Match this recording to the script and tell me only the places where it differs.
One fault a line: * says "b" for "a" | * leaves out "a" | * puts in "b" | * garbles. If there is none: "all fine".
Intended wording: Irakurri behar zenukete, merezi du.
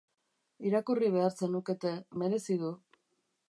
all fine